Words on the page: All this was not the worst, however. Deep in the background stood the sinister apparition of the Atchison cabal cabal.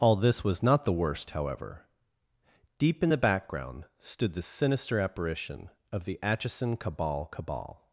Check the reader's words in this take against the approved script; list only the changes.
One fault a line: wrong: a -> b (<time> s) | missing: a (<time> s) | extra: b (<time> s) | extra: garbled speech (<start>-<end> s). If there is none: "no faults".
no faults